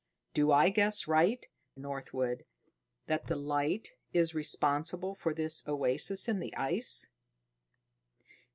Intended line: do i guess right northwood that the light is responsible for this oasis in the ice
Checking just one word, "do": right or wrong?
right